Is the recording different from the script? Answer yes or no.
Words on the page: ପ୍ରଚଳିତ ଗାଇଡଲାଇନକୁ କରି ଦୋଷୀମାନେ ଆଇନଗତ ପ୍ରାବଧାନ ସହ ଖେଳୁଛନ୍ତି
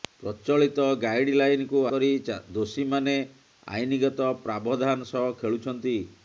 no